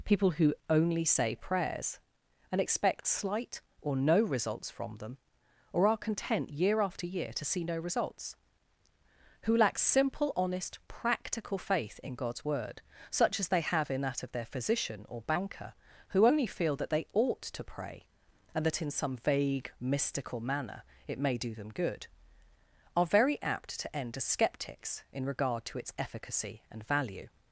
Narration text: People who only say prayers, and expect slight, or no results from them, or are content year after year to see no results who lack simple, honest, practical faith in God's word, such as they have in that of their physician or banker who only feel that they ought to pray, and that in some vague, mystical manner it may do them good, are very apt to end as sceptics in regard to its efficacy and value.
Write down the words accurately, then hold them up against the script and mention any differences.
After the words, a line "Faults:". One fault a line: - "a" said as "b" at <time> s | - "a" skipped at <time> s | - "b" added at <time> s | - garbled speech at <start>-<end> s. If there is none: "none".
People who only say prayers, and expect slight, or no results from them, or are content year after year to see no results who lack simple, honest, practical faith in God's word, such as they have in that of their physician or banker who only feel that they ought to pray, and that in some vague, mystical manner it may do them good, are very apt to end as sceptics in regard to its efficacy and value.
Faults:
none